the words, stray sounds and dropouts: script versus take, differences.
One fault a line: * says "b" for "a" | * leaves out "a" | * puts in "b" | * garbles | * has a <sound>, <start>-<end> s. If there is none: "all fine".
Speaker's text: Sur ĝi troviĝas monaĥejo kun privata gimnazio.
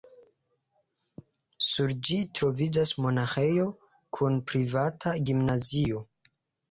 all fine